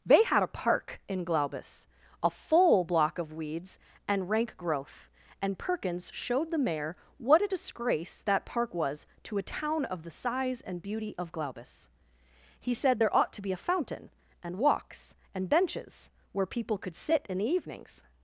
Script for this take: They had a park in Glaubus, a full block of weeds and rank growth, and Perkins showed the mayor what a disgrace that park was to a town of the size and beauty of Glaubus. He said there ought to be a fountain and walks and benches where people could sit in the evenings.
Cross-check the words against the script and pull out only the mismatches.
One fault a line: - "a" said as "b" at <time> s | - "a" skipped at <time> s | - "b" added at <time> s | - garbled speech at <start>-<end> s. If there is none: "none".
none